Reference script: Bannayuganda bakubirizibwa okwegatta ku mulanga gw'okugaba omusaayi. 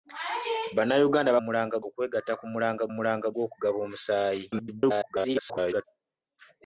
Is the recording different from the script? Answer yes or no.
yes